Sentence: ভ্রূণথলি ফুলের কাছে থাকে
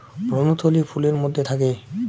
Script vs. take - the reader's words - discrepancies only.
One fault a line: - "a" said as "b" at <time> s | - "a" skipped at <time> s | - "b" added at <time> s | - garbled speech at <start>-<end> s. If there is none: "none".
- "কাছে" said as "মধ্যে" at 1.1 s